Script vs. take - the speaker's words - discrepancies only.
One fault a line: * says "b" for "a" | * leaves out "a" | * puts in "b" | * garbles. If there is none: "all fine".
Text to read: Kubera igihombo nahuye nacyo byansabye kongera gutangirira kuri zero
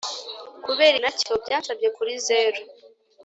* leaves out "igihombo nahuye"
* leaves out "kongera gutangirira"